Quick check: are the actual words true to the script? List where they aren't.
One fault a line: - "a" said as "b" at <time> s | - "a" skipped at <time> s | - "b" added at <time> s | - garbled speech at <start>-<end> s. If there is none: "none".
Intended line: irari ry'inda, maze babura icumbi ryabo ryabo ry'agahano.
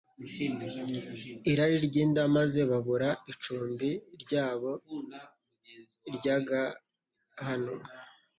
- "ryabo" skipped at 4.7 s